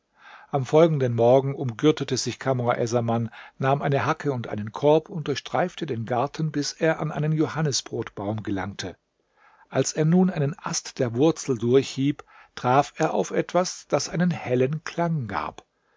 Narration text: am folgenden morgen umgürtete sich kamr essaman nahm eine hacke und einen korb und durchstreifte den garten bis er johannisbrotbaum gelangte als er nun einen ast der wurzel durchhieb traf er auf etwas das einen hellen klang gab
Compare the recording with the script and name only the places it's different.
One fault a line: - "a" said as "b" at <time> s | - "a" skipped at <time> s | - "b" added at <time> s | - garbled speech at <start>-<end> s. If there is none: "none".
- "an einen" added at 7.0 s